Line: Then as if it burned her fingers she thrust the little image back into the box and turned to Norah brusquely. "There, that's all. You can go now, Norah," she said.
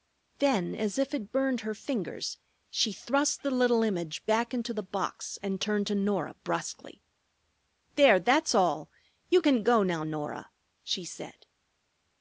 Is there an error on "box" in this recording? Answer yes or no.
no